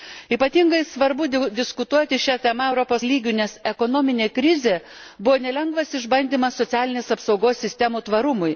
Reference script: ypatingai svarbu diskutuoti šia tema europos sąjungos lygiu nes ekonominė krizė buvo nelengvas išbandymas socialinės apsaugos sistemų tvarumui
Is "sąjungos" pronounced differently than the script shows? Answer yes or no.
yes